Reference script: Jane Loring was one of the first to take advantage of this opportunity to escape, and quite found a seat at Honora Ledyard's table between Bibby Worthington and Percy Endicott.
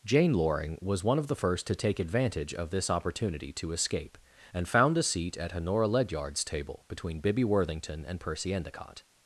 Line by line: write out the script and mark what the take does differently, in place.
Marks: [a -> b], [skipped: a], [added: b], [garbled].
Jane Loring was one of the first to take advantage of this opportunity to escape, and [skipped: quite] found a seat at Honora Ledyard's table between Bibby Worthington and Percy Endicott.